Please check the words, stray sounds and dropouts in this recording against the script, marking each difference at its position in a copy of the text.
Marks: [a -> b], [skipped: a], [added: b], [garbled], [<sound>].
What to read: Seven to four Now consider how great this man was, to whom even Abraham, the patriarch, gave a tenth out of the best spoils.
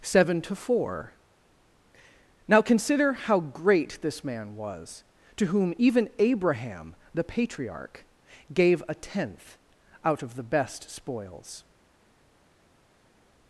Seven to four Now consider how great this man was, to whom even Abraham, the patriarch, gave a tenth out of the best spoils.